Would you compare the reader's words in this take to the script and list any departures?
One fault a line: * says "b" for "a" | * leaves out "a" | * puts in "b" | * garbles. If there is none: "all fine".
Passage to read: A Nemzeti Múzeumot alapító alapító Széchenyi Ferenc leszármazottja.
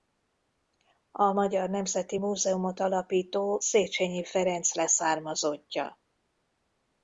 * puts in "Magyar"
* leaves out "alapító"